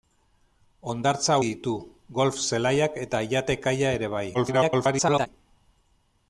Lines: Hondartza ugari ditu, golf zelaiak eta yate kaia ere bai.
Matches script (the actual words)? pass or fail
fail